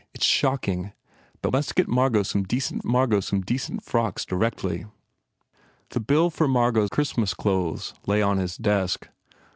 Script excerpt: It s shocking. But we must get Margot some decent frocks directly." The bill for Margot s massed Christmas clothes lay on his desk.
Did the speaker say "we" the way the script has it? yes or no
no